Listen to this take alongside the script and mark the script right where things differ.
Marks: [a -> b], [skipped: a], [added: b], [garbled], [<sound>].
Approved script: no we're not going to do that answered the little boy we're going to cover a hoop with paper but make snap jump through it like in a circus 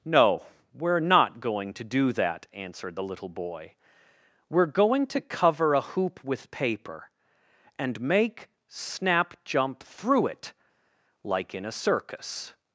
no we're not going to do that answered the little boy we're going to cover a hoop with paper [but -> and] make snap jump through it like in a circus